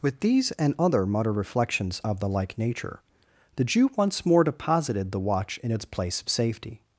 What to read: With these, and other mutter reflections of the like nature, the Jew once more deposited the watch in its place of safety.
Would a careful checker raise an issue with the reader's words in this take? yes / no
no